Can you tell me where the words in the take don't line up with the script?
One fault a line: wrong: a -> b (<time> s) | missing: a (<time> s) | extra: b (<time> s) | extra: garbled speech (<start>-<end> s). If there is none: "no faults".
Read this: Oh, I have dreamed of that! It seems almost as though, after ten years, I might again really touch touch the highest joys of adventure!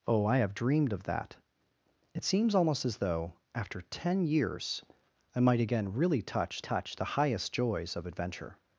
no faults